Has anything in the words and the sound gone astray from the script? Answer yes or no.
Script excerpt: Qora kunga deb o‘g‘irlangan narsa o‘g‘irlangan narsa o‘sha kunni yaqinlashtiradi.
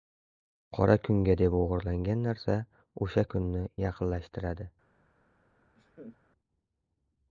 yes